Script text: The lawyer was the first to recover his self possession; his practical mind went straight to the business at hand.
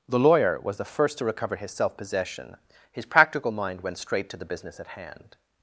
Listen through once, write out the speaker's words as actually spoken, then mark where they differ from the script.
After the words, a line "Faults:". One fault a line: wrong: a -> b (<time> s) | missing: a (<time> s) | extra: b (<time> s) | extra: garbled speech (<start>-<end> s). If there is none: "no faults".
The lawyer was the first to recover his self possession; his practical mind went straight to the business at hand.
Faults:
no faults